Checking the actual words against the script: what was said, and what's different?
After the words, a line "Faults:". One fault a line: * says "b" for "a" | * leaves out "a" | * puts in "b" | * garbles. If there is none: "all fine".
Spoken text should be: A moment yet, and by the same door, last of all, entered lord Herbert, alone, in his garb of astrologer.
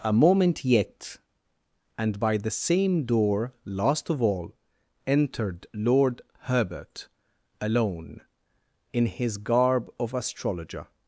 A moment yet, and by the same door, last of all, entered lord Herbert, alone, in his garb of astrologer.
Faults:
all fine